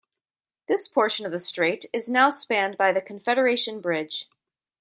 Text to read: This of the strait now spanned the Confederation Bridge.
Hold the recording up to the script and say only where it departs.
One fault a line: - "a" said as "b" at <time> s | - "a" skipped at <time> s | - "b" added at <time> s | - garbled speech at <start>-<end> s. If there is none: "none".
- "portion" added at 0.9 s
- "is" added at 1.9 s
- "by" added at 2.8 s